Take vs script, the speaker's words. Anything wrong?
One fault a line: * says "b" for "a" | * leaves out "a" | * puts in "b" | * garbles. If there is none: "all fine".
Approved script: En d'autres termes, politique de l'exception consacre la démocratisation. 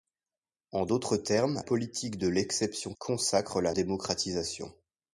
all fine